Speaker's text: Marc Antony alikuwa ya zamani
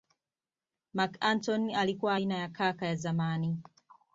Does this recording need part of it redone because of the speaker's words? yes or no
yes